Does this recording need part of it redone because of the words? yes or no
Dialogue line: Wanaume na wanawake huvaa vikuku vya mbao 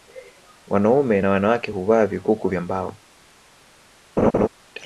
no